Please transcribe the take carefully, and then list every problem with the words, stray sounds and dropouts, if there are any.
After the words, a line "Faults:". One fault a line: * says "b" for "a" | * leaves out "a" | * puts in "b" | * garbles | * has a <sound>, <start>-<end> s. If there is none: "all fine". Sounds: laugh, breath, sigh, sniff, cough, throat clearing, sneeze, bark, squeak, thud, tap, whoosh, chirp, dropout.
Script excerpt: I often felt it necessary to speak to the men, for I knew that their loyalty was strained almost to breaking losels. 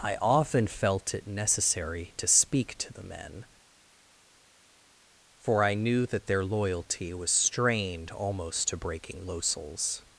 I often felt it necessary to speak to the men, for I knew that their loyalty was strained almost to breaking losels.
Faults:
all fine